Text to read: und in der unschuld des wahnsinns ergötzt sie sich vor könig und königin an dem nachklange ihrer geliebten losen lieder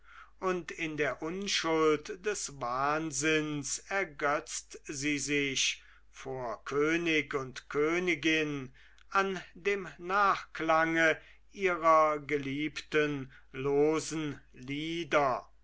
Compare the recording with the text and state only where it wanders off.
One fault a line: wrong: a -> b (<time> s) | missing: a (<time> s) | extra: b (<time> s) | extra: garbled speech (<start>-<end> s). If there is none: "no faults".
no faults